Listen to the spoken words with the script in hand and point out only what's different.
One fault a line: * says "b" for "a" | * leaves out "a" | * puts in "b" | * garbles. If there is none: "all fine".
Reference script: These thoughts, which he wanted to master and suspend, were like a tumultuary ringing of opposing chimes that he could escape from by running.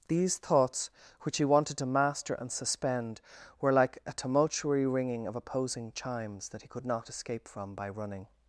* puts in "not"